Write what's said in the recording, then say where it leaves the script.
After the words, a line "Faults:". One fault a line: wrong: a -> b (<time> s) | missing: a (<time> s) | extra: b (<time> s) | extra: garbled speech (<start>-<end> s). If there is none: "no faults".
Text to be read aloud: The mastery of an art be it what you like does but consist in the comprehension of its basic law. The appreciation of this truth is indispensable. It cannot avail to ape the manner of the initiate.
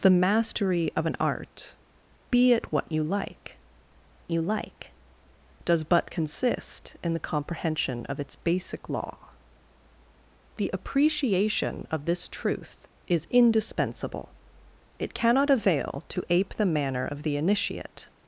The mastery of an art be it what you like you like does but consist in the comprehension of its basic law. The appreciation of this truth is indispensable. It cannot avail to ape the manner of the initiate.
Faults:
extra: you like (4.3 s)